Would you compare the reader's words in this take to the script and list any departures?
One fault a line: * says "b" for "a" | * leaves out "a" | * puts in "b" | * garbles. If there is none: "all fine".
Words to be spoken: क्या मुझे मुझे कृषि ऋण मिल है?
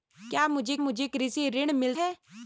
all fine